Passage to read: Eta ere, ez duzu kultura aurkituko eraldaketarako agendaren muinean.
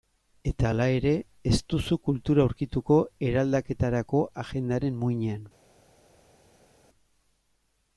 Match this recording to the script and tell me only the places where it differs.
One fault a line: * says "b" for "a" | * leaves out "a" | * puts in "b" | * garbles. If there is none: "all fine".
* puts in "hala"